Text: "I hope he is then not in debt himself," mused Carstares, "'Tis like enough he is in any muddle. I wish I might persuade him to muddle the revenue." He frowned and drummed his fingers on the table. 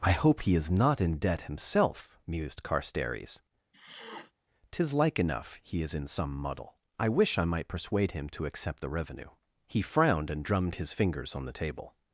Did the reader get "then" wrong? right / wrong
wrong